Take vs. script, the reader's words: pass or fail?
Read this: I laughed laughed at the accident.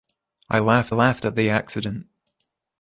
pass